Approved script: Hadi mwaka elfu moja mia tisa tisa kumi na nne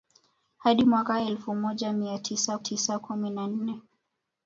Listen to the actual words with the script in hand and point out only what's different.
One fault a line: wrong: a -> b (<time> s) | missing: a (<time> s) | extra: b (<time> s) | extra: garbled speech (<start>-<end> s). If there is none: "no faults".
no faults